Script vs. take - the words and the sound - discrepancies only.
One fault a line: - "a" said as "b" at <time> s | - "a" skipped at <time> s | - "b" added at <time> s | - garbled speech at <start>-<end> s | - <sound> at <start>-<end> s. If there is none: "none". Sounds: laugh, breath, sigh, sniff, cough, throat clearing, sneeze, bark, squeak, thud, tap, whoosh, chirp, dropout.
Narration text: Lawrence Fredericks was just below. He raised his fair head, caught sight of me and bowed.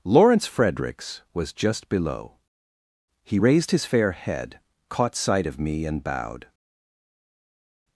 none